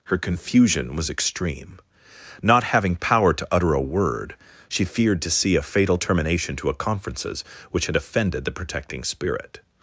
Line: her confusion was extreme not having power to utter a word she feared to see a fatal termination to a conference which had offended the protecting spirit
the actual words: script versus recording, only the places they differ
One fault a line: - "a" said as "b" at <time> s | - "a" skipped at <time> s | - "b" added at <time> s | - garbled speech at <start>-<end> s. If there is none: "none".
- "conference" said as "conferences" at 6.7 s